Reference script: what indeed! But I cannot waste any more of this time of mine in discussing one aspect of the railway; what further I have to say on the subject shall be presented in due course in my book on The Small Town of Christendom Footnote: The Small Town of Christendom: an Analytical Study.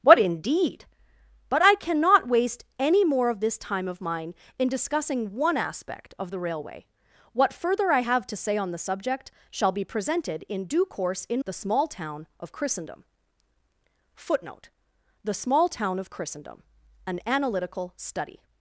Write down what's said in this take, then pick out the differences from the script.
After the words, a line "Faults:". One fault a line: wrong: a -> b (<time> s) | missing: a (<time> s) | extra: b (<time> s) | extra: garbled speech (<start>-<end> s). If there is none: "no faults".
what indeed! But I cannot waste any more of this time of mine in discussing one aspect of the railway; what further I have to say on the subject shall be presented in due course in The Small Town of Christendom Footnote: The Small Town of Christendom: an Analytical Study.
Faults:
missing: my book on (11.4 s)